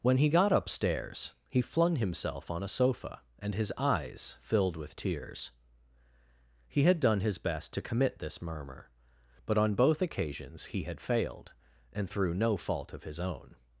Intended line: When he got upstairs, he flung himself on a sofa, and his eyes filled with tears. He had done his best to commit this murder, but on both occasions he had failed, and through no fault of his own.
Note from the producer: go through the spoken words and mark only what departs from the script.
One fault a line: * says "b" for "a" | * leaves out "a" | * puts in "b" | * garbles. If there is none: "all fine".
* says "murmur" for "murder"